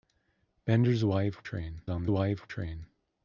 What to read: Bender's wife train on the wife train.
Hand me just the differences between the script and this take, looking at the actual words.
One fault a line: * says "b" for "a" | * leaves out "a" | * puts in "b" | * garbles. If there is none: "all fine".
all fine